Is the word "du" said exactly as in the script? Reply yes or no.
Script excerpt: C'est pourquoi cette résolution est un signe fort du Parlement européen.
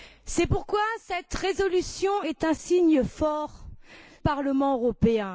no